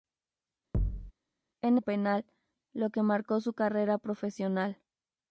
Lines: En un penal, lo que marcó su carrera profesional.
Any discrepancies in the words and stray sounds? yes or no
yes